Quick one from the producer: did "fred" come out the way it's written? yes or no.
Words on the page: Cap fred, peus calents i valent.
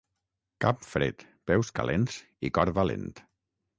yes